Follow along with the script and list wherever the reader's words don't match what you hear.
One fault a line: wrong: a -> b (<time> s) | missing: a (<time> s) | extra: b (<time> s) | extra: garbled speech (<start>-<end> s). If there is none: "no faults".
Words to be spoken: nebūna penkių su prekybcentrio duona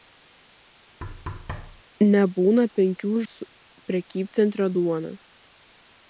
no faults